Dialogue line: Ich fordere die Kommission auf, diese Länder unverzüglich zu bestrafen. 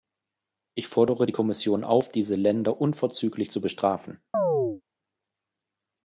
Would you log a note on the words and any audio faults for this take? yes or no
yes